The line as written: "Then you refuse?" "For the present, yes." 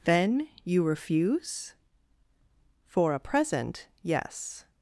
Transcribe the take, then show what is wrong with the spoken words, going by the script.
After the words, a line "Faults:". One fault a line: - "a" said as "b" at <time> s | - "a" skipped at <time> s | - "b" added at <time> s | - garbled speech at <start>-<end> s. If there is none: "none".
"Then you refuse?" "For a present, yes."
Faults:
- "the" said as "a" at 3.1 s